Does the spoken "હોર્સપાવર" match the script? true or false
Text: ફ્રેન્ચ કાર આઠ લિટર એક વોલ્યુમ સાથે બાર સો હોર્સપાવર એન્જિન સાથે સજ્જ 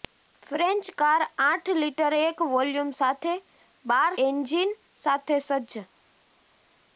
false